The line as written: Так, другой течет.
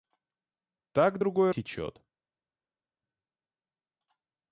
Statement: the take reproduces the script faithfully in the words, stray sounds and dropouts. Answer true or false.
true